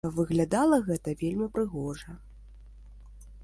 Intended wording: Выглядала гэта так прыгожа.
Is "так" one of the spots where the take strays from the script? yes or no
yes